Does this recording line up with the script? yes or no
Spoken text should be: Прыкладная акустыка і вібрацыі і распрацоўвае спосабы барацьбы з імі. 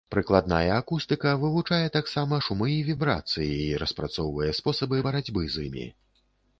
no